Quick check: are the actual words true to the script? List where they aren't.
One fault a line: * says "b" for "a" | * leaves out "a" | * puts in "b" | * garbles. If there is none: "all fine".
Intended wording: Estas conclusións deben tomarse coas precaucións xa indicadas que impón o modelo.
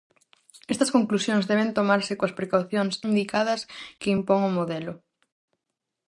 * leaves out "xa"